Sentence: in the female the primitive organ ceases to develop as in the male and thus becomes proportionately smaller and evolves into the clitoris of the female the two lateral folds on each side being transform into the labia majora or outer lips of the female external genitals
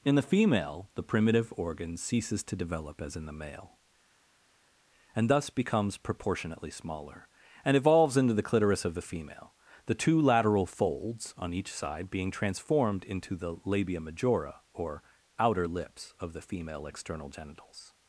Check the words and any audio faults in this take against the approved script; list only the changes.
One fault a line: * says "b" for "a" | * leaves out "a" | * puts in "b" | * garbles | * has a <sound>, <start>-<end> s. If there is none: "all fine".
* says "transformed" for "transform"